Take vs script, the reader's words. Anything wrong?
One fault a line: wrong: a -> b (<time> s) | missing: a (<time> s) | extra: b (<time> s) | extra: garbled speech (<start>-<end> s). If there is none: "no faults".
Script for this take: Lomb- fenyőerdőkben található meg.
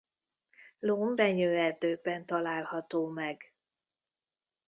no faults